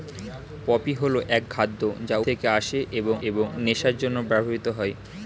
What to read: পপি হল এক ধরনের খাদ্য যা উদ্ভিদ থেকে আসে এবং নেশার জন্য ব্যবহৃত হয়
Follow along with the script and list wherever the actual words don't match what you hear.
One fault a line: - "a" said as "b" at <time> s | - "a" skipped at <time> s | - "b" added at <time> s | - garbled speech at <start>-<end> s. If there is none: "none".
- "ধরনের" skipped at 1.4 s
- "উদ্ভিদ" skipped at 2.2 s
- "এবং" added at 3.3 s